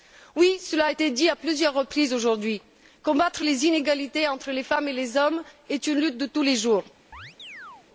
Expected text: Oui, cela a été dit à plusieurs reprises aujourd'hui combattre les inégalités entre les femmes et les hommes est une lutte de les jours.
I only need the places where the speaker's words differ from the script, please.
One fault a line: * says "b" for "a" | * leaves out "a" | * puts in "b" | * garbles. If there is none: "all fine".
* puts in "tous"